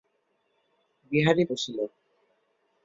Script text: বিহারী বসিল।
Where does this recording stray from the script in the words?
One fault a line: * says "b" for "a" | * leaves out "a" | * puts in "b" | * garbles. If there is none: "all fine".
all fine